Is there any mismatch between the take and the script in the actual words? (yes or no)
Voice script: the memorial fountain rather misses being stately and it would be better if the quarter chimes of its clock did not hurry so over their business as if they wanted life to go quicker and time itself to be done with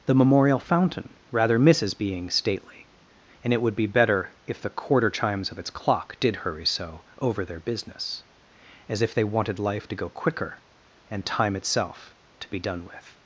yes